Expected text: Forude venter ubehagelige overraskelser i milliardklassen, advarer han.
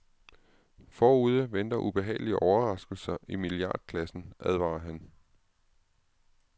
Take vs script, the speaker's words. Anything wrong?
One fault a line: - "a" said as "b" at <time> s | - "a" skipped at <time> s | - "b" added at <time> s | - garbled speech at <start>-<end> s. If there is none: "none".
none